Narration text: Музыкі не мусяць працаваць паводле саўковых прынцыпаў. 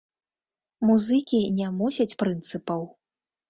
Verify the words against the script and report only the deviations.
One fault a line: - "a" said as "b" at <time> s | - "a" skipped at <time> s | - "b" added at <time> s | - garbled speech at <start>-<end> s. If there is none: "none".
- "працаваць паводле саўковых" skipped at 2.2 s